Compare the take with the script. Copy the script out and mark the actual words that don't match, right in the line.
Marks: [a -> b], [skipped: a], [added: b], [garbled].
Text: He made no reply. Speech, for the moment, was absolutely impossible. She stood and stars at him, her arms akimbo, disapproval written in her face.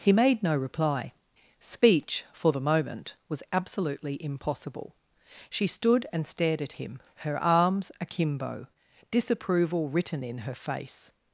He made no reply. Speech, for the moment, was absolutely impossible. She stood and [stars -> stared] at him, her arms akimbo, disapproval written in her face.